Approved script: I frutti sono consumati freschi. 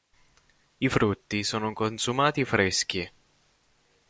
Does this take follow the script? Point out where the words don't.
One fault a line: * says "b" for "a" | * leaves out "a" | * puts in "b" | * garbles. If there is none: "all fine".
all fine